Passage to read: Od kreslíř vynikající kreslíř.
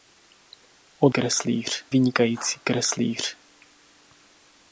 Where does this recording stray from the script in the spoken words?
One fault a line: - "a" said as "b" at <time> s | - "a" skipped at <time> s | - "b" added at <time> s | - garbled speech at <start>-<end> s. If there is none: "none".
none